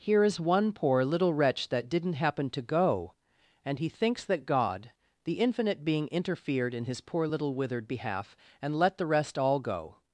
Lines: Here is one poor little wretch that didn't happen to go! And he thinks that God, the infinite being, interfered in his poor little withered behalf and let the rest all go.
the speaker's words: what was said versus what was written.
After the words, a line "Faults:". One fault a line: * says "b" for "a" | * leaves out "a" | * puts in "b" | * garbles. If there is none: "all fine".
Here is one poor little wretch that didn't happen to go! And he thinks that God, the infinite being, interfered in his poor little withered behalf and let the rest all go.
Faults:
all fine